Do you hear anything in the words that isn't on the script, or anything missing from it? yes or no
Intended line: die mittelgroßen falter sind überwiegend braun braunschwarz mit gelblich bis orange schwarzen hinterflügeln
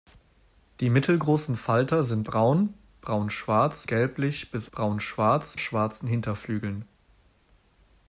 yes